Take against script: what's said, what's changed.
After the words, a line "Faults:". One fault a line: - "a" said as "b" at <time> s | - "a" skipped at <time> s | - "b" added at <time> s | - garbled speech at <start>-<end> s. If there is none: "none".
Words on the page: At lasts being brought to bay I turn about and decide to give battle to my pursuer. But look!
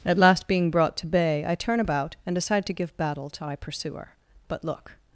At last being brought to bay I turn about and decide to give battle to my pursuer. But look!
Faults:
- "lasts" said as "last" at 0.2 s